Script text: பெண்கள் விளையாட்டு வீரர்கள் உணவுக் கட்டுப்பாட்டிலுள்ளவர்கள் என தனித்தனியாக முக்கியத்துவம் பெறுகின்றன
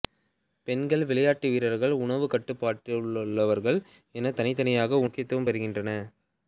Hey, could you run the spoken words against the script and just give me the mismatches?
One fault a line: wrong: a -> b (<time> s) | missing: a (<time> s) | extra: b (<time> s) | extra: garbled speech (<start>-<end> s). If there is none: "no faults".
no faults